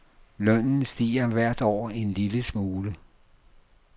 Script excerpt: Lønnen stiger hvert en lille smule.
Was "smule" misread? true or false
false